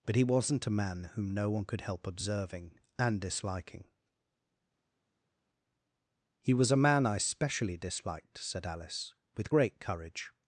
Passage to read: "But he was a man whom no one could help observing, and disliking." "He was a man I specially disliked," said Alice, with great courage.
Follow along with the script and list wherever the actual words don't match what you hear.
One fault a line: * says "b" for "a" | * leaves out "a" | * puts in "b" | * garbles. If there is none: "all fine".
* says "wasn't" for "was"